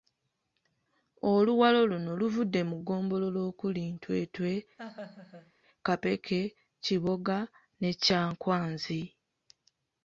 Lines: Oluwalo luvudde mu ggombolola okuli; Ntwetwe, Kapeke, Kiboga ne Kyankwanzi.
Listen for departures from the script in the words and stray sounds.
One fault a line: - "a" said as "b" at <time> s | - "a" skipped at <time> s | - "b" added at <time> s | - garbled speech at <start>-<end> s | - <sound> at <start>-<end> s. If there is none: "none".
- "luno" added at 1.9 s
- laugh at 4.8-5.5 s